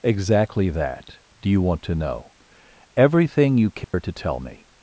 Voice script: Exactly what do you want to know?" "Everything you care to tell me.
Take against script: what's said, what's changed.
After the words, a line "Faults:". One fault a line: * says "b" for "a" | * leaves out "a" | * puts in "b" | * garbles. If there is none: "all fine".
Exactly that do you want to know?" "Everything you care to tell me.
Faults:
* says "that" for "what"